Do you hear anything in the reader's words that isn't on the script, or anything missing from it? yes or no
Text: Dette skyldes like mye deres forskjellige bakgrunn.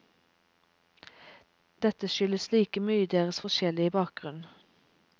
no